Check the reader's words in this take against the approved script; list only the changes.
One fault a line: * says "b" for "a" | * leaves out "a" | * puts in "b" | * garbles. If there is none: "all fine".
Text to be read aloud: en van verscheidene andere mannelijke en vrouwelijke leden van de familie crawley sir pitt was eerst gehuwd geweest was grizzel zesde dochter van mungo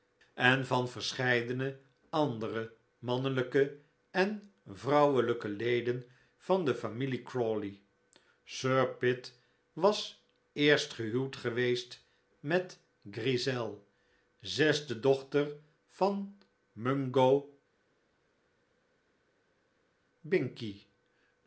* says "met" for "was"